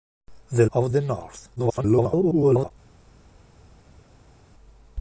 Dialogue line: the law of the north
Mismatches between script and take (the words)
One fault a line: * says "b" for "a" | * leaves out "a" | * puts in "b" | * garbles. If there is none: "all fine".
* leaves out "law"
* garbles